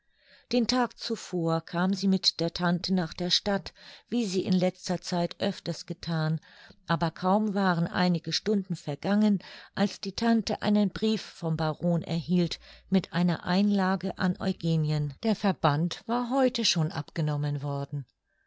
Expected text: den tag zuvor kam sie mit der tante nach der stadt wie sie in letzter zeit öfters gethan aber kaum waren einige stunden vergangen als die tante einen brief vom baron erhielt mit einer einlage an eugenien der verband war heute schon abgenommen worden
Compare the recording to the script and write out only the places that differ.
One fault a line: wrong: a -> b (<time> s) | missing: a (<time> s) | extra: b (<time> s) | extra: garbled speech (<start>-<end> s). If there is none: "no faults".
no faults